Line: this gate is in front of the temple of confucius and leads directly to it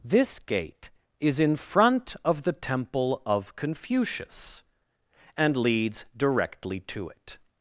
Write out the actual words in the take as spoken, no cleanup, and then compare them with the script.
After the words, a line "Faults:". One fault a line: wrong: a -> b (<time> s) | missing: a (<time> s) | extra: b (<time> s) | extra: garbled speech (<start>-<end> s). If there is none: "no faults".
this gate is in front of the temple of confucius and leads directly to it
Faults:
no faults